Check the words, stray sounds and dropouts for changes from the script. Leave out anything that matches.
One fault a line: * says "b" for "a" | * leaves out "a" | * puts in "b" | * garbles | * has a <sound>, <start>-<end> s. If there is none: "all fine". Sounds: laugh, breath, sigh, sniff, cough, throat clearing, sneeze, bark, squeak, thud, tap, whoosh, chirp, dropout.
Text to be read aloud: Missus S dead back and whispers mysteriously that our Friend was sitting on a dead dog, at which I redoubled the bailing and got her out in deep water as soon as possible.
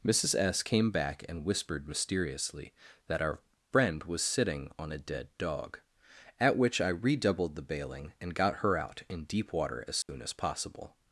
* says "came" for "dead"
* says "whispered" for "whispers"
* has a dropout, 10.0-10.1 s